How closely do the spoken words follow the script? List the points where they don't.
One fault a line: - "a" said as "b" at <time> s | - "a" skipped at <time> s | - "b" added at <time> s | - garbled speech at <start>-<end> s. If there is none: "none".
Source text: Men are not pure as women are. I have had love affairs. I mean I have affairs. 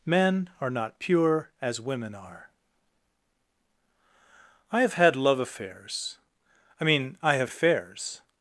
none